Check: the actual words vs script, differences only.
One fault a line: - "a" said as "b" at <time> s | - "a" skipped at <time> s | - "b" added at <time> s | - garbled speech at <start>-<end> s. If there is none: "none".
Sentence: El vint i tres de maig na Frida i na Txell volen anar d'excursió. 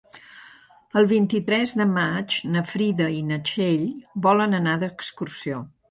none